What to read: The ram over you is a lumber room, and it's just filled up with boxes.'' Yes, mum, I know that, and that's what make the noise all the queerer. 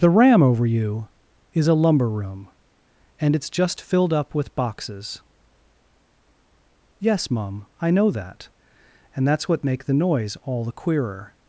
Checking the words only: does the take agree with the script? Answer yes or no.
yes